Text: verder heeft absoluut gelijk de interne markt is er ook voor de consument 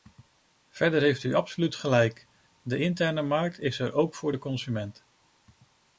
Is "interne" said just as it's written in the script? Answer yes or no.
yes